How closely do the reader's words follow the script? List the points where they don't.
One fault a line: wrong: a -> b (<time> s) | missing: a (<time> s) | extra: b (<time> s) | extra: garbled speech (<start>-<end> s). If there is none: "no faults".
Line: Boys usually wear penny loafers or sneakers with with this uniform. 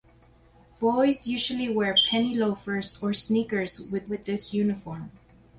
no faults